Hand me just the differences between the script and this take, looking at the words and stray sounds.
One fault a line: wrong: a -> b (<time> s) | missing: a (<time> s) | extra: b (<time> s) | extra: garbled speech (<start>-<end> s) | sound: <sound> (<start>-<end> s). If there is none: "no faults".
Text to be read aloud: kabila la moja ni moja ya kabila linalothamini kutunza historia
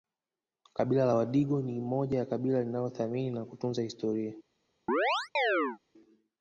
wrong: moja -> wadigo (1.1 s)
extra: na (3.3 s)
sound: chirp (4.9-5.8 s)